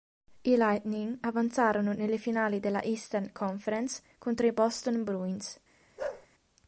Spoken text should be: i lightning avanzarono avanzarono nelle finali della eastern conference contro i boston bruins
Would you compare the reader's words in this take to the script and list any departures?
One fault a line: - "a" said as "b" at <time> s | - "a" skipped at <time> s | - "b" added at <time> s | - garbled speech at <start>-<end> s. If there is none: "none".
- "avanzarono" skipped at 1.9 s